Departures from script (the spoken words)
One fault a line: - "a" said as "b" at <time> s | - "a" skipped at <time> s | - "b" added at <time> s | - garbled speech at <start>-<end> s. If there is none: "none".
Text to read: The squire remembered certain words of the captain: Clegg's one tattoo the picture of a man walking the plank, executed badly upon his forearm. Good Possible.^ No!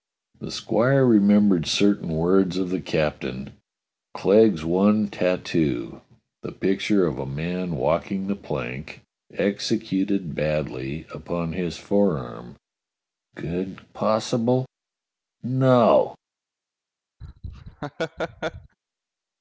none